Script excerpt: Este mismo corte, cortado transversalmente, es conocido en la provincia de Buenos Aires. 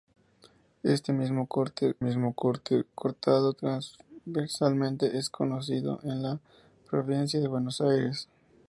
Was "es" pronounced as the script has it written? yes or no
yes